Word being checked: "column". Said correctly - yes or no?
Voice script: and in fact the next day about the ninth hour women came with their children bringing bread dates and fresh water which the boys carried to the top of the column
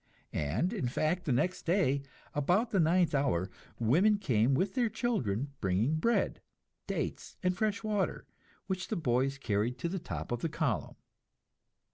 yes